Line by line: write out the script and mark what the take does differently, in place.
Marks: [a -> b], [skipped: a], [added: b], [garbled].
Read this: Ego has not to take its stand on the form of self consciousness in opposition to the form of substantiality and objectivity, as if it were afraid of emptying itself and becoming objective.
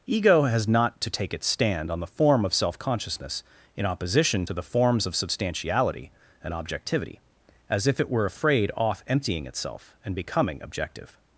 Ego has not to take its stand on the form of self consciousness in opposition to the [form -> forms] of substantiality and objectivity, as if it were afraid [of -> off] emptying itself and becoming objective.